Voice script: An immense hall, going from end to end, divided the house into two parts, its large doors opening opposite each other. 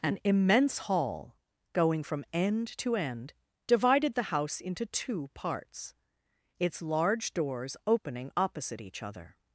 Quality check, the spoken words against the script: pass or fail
pass